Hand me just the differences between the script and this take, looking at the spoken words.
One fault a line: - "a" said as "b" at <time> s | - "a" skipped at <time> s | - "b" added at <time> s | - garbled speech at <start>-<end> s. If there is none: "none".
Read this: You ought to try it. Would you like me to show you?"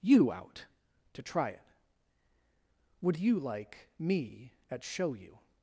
- "ought" said as "out" at 0.3 s
- "to" said as "at" at 4.7 s